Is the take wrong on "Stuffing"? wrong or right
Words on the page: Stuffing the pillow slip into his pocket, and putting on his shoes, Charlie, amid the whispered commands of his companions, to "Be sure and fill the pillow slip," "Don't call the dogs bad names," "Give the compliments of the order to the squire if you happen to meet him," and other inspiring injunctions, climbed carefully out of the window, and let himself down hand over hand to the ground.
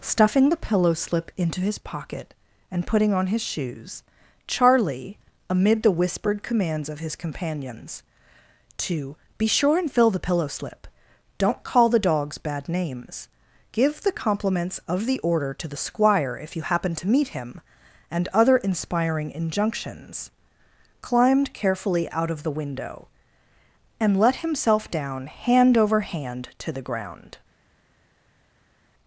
right